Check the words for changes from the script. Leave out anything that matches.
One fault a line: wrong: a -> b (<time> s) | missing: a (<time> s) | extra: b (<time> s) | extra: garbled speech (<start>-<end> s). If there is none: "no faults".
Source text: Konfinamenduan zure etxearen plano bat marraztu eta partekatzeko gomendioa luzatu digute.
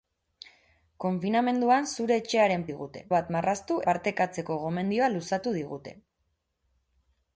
wrong: plano -> digute (2.7 s)
missing: eta (3.8 s)